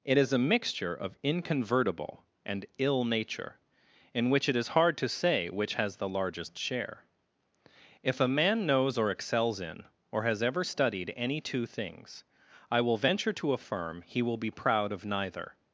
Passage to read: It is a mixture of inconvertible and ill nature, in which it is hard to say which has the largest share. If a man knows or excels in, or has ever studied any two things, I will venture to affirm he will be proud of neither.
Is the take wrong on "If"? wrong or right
right